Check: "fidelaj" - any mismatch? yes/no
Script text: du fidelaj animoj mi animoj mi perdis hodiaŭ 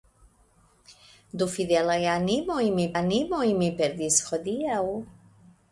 no